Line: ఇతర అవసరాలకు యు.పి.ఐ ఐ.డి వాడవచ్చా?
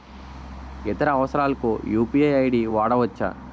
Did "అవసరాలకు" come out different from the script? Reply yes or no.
no